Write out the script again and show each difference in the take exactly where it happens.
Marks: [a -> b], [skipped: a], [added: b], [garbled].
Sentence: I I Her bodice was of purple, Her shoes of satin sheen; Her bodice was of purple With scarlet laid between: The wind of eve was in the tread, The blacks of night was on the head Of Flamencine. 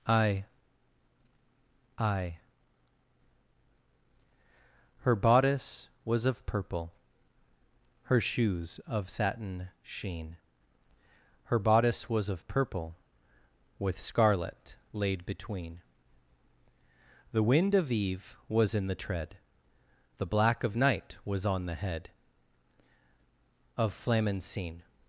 I I Her bodice was of purple, Her shoes of satin sheen; Her bodice was of purple With scarlet laid between: The wind of eve was in the tread, The [blacks -> black] of night was on the head Of Flamencine.